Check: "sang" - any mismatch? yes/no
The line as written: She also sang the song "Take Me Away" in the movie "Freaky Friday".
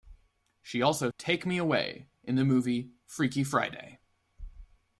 yes